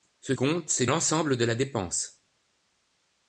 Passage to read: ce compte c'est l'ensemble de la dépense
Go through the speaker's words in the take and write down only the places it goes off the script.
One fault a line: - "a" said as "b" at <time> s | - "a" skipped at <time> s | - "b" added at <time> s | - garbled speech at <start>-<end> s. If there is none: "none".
none